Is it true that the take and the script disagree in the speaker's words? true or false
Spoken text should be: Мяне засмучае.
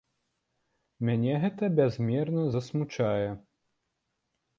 true